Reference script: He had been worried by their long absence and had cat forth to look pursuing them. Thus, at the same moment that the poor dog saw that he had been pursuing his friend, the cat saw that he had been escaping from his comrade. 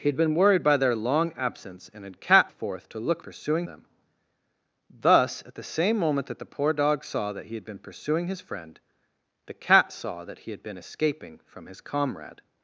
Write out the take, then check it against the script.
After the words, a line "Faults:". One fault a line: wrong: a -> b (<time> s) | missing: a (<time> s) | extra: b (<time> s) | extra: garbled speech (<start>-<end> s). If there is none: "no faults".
He had been worried by their long absence and had cat forth to look pursuing them. Thus, at the same moment that the poor dog saw that he had been pursuing his friend, the cat saw that he had been escaping from his comrade.
Faults:
no faults